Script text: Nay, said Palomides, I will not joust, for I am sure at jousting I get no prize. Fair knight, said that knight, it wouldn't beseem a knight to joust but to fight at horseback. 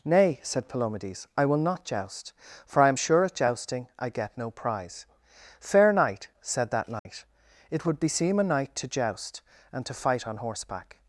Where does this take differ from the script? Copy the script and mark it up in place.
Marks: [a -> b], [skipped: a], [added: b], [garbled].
Nay, said Palomides, I will not joust, for I am sure at jousting I get no prize. Fair knight, said that knight, it [wouldn't -> would] beseem a knight to joust [but -> and] to fight [at -> on] horseback.